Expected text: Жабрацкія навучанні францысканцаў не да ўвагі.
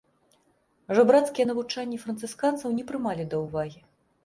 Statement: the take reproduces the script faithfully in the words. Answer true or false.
false